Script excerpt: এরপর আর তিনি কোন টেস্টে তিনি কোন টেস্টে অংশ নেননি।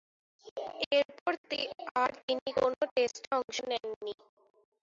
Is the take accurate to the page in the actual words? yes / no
no